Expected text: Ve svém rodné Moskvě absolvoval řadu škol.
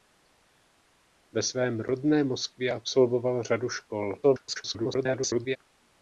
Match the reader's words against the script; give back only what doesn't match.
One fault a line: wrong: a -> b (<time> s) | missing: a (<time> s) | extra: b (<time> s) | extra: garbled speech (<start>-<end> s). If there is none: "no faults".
extra: garbled speech (4.2-5.6 s)